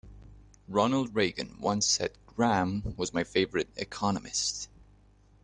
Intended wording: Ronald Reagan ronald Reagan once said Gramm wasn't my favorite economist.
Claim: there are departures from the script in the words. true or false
true